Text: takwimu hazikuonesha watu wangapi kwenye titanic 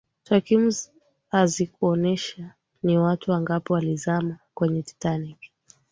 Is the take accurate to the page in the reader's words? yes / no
no